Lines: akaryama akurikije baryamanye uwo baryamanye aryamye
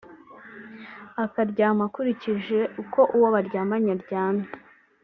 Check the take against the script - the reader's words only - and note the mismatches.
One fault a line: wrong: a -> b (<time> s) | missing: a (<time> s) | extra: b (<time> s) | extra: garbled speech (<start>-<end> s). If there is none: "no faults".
wrong: baryamanye -> uko (2.8 s)